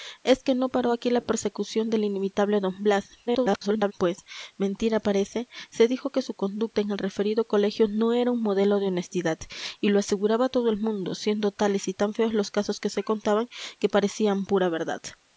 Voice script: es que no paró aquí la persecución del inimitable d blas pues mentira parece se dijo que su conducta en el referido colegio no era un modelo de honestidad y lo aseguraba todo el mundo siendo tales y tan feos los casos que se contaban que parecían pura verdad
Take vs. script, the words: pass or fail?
fail